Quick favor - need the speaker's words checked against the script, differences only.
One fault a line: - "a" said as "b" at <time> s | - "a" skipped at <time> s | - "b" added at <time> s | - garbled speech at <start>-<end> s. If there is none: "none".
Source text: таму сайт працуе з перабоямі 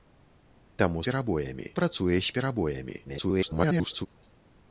- "сайт" said as "перабоямі" at 1.1 s
- garbled speech at 3.0-4.1 s